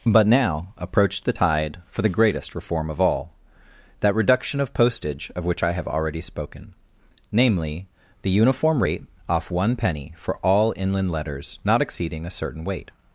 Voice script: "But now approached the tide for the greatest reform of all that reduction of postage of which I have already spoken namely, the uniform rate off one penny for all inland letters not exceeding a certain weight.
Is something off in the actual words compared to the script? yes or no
no